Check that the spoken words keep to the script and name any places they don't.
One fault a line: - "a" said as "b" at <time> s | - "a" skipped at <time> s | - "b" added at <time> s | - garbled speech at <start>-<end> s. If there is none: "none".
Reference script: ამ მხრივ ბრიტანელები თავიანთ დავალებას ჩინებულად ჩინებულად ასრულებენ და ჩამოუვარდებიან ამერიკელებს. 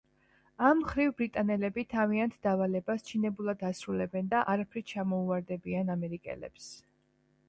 - "ჩინებულად" skipped at 3.6 s
- "არაფრით" added at 4.5 s